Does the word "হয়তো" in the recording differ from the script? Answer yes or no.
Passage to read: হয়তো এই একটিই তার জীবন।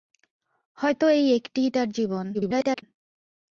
no